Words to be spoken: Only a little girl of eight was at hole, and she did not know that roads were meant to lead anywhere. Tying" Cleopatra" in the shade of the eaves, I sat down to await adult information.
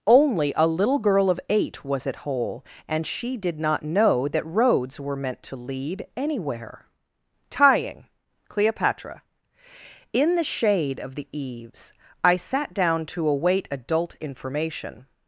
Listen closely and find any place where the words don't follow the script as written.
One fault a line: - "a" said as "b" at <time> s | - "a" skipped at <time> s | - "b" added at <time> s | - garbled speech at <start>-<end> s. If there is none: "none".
none